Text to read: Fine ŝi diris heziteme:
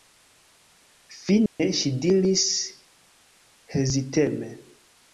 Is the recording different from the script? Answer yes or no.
no